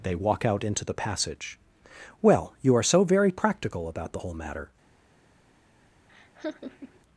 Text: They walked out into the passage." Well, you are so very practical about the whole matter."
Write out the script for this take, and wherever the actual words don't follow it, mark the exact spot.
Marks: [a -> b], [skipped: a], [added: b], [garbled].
They [walked -> walk] out into the passage." Well, you are so very practical about the whole matter."